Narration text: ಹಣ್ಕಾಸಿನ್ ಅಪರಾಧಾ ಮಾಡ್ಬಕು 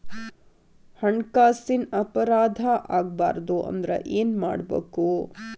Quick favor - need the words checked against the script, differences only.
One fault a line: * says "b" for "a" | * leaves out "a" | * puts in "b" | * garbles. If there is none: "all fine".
* puts in "ಆಗ್ಬಾರ್ದು ಅಂದ್ರ ಏನ್"